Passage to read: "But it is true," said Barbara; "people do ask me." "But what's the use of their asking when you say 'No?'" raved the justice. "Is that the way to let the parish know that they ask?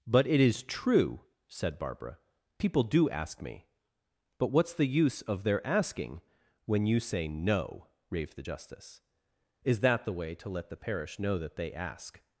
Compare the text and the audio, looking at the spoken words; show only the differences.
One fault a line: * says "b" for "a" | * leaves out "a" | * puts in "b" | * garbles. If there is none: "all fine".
all fine